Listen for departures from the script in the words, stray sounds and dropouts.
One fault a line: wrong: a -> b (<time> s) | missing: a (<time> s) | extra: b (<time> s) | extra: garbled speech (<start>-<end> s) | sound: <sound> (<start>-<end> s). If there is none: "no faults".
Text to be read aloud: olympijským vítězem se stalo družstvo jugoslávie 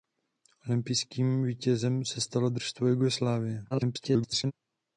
extra: garbled speech (3.7-4.5 s)